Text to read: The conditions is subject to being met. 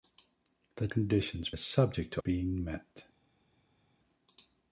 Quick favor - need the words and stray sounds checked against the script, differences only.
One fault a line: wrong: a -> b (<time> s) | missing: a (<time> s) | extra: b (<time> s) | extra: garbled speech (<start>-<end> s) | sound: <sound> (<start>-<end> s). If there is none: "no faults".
no faults